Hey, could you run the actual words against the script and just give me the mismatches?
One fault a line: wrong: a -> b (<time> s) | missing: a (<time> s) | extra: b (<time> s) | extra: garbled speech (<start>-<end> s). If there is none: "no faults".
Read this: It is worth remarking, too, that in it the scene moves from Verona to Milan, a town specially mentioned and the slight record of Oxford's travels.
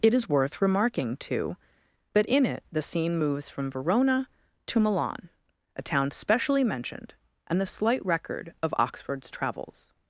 no faults